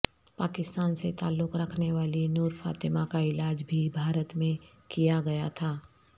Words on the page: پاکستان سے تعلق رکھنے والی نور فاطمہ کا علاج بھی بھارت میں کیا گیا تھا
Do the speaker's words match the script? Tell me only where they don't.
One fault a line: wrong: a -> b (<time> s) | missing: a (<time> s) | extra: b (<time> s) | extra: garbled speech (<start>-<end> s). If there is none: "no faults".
no faults